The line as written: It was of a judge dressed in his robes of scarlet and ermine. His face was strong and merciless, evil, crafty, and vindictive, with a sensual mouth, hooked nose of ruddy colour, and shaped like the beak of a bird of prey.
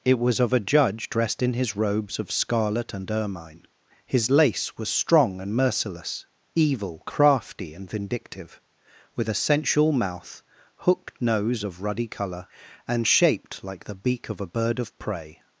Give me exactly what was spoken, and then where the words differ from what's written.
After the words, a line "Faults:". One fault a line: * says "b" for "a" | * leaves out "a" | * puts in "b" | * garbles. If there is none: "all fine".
It was of a judge dressed in his robes of scarlet and ermine. His lace was strong and merciless, evil, crafty, and vindictive, with a sensual mouth, hooked nose of ruddy colour, and shaped like the beak of a bird of prey.
Faults:
* says "lace" for "face"